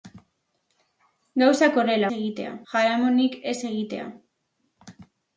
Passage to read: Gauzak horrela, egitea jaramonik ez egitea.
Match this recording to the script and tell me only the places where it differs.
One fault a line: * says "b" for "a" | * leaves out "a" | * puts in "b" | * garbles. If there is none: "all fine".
all fine